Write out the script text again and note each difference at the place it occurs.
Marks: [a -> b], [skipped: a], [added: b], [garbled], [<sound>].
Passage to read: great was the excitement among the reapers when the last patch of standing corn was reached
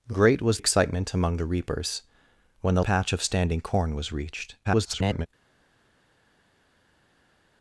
great was [skipped: the] excitement among the reapers when the [skipped: last] patch of standing corn was reached [garbled]